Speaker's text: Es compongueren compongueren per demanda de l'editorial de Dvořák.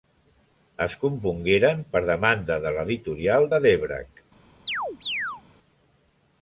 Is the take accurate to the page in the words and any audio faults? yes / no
no